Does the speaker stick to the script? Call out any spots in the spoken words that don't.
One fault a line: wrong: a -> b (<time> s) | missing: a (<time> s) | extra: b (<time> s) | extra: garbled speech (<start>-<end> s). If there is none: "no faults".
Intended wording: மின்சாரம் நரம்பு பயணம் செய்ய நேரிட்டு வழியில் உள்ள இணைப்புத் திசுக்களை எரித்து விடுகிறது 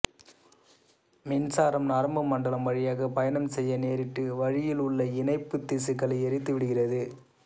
extra: மண்டலம் வழியாக (2.3 s)